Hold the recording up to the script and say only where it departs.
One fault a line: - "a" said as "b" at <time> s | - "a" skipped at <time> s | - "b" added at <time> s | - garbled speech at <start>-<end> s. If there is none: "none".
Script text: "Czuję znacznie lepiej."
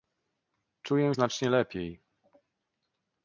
none